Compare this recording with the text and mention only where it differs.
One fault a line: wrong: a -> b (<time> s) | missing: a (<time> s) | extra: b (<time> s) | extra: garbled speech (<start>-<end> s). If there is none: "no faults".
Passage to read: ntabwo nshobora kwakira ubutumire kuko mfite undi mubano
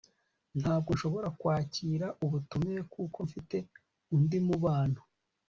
no faults